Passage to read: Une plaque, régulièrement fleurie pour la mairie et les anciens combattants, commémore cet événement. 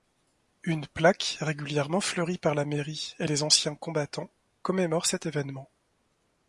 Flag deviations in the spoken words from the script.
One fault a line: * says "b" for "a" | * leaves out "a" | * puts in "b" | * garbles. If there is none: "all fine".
* says "par" for "pour"